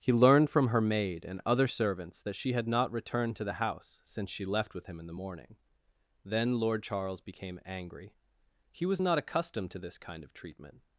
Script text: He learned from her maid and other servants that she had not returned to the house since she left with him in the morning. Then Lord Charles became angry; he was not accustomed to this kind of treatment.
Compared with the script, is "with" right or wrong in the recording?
right